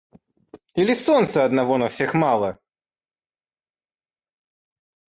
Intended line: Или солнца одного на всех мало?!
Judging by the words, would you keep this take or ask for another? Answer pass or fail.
pass